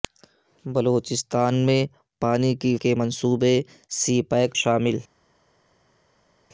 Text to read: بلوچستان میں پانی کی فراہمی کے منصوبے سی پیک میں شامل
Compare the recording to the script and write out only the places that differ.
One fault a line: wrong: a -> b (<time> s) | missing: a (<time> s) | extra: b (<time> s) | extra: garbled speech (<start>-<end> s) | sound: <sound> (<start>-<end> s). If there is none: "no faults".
missing: فراہمی (2.8 s)
missing: میں (4.6 s)